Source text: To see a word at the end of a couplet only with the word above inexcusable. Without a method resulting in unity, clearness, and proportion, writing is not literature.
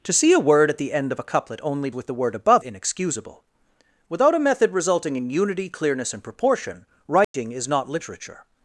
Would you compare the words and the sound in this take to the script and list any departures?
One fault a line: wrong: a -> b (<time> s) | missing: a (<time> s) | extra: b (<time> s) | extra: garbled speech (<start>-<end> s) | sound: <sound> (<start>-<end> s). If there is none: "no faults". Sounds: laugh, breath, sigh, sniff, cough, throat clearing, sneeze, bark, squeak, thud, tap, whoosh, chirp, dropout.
sound: dropout (7.2-7.3 s)